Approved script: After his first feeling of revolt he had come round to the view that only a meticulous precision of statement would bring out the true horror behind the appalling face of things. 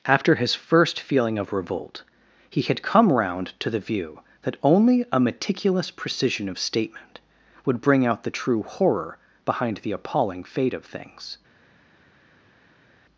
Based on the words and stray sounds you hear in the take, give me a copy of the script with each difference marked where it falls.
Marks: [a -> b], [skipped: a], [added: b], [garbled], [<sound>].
After his first feeling of revolt he had come round to the view that only a meticulous precision of statement would bring out the true horror behind the appalling [face -> fate] of things.